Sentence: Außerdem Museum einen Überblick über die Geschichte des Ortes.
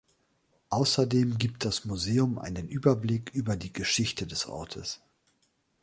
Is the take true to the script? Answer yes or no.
no